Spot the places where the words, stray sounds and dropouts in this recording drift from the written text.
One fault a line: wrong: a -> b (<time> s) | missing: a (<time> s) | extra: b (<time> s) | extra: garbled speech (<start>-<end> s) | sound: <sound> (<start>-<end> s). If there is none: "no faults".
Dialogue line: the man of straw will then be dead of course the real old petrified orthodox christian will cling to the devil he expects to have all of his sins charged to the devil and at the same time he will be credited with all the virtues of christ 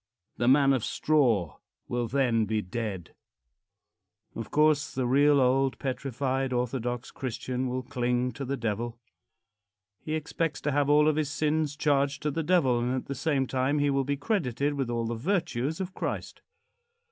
no faults